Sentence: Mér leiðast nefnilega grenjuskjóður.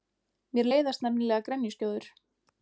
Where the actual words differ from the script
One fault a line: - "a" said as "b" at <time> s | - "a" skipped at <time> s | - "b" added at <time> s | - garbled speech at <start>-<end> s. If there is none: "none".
none